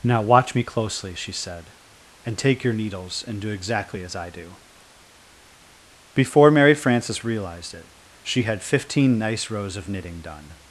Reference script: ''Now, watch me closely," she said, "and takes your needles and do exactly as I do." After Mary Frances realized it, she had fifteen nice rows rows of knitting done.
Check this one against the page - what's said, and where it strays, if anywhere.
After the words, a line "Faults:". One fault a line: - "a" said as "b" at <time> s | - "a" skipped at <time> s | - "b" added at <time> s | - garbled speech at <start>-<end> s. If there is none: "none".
''Now, watch me closely," she said, "and take your needles and do exactly as I do." Before Mary Frances realized it, she had fifteen nice rows of knitting done.
Faults:
- "takes" said as "take" at 2.4 s
- "After" said as "Before" at 6.1 s
- "rows" skipped at 9.8 s